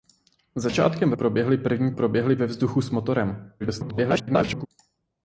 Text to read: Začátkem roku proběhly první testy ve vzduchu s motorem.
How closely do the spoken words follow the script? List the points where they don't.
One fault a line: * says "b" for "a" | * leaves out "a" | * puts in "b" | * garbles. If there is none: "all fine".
* leaves out "roku"
* says "proběhly" for "testy"
* garbles